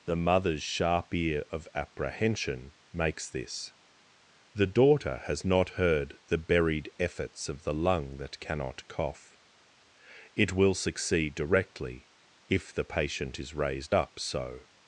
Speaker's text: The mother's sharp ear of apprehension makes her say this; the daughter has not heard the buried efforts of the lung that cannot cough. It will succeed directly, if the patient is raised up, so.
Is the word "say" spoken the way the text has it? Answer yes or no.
no